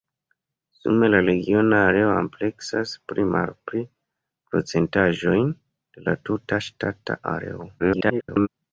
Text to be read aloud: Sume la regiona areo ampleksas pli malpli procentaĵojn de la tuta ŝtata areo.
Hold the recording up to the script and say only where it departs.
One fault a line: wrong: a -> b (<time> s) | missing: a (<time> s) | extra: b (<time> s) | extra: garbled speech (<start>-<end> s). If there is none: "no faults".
extra: garbled speech (7.8-8.5 s)